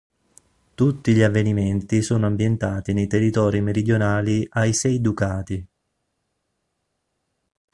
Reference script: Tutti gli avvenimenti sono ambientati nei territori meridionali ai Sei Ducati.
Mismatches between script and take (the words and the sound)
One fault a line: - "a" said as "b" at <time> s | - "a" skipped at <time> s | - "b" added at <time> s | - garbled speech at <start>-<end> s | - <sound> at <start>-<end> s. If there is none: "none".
none